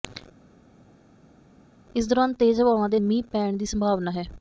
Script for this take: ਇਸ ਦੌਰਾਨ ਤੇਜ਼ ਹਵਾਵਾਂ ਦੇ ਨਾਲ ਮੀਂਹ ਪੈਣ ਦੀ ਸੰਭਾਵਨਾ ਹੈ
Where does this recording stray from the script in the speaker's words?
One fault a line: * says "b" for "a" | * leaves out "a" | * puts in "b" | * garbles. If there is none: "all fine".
* leaves out "ਨਾਲ"